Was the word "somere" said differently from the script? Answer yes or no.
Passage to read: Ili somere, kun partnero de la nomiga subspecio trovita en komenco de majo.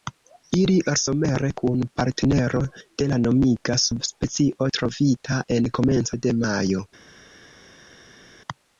no